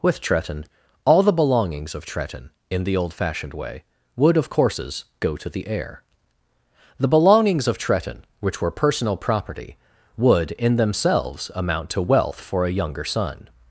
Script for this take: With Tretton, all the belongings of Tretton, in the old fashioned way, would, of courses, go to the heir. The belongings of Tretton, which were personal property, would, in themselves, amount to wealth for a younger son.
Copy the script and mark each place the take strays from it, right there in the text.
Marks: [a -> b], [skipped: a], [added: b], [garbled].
With Tretton, all the belongings of Tretton, in the old fashioned way, would, of courses, go to the heir. The belongings of Tretton, which were personal property, would, in themselves, amount to wealth for a younger son.